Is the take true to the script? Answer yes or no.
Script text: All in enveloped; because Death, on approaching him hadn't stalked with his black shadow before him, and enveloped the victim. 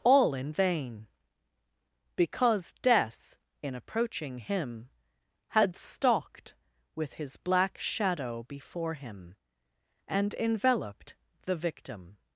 no